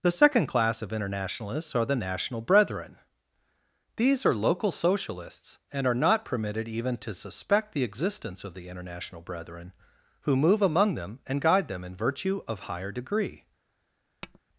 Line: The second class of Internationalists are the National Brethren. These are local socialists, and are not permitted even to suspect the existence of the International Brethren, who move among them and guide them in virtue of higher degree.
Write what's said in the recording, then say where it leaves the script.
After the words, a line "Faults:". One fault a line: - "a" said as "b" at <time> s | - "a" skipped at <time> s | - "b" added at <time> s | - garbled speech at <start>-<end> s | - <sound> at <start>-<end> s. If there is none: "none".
The second class of Internationalists are the National Brethren. These are local socialists, and are not permitted even to suspect the existence of the International Brethren, who move among them and guide them in virtue of higher degree.
Faults:
- tap at 14.2-14.4 s